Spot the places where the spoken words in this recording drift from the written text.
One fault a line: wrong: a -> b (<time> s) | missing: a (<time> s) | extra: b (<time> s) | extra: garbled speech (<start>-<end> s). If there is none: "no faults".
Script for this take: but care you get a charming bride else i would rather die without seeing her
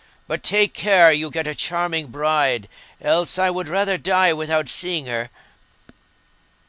extra: take (0.4 s)